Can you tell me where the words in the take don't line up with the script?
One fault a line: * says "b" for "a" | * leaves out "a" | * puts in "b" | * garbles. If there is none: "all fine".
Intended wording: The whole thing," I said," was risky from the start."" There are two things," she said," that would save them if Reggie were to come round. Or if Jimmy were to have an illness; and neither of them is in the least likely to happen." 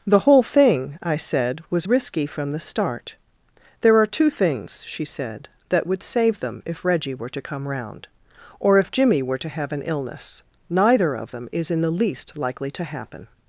* leaves out "and"